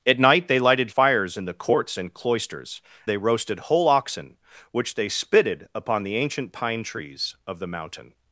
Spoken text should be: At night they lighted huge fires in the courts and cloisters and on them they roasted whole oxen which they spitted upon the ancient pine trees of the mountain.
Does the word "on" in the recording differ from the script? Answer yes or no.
yes